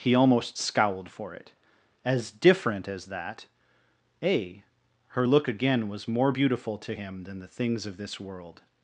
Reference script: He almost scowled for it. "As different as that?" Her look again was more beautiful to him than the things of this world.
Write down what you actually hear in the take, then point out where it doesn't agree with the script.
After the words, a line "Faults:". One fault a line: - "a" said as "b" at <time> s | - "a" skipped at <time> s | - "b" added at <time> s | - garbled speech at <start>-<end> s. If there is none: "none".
He almost scowled for it. "As different as that?" a Her look again was more beautiful to him than the things of this world.
Faults:
- "a" added at 4.2 s